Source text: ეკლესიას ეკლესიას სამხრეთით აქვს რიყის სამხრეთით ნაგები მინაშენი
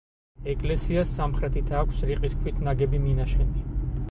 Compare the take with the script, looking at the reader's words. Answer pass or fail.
fail